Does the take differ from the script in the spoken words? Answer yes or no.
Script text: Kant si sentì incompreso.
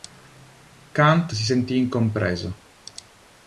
no